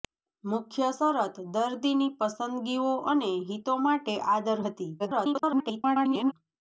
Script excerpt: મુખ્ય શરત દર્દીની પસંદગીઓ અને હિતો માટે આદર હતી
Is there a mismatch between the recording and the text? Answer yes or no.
yes